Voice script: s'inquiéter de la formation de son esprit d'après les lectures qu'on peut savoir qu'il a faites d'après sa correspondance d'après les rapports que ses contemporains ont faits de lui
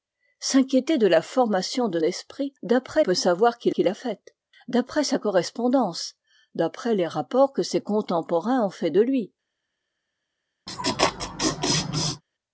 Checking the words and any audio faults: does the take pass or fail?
fail